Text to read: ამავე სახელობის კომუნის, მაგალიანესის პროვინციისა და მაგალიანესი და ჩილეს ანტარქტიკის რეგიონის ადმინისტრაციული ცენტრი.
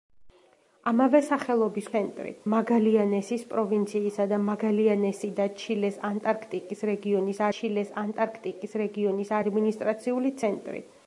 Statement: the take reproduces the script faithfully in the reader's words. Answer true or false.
false